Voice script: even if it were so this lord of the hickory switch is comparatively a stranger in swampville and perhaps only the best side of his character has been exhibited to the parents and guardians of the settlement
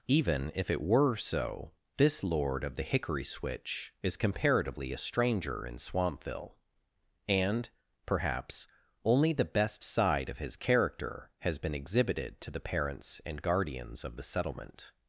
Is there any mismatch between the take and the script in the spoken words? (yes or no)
no